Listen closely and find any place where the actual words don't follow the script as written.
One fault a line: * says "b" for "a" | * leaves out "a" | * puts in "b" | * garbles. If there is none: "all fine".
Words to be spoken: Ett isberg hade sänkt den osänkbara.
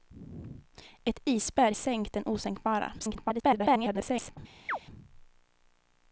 * leaves out "hade"
* garbles